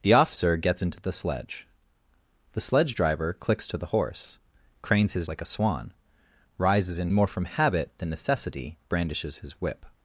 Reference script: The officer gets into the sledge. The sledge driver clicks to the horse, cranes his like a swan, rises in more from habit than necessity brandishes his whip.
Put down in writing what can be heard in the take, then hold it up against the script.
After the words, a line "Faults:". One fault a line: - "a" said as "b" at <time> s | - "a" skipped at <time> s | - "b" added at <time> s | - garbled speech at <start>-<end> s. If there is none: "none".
The officer gets into the sledge. The sledge driver clicks to the horse, cranes his like a swan, rises in more from habit than necessity brandishes his whip.
Faults:
none